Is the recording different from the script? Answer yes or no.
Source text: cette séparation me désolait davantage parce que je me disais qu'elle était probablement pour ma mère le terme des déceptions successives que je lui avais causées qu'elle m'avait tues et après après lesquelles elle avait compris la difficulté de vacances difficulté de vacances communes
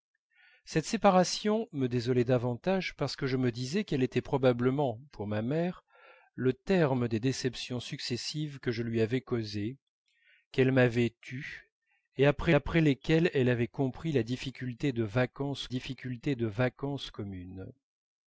no